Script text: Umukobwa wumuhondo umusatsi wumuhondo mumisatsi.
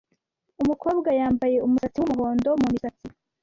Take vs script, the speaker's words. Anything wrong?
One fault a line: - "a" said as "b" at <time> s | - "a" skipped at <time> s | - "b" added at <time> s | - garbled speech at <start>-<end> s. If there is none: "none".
- "wumuhondo" said as "yambaye" at 1.2 s